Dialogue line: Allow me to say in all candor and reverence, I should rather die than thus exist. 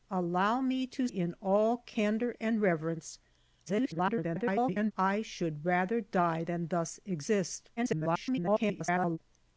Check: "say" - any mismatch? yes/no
yes